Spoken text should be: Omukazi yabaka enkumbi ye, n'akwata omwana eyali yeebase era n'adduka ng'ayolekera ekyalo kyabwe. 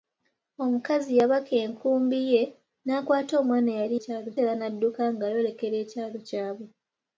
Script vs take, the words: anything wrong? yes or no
yes